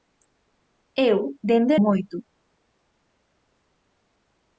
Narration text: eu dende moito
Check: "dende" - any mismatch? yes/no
no